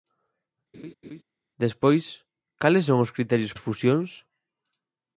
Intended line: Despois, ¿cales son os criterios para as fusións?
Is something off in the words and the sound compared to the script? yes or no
yes